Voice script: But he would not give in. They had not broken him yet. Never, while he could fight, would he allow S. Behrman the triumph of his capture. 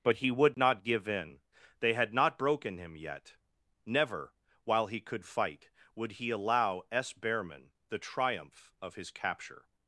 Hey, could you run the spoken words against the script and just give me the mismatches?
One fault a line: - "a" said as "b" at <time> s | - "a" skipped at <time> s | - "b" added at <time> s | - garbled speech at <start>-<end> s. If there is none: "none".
none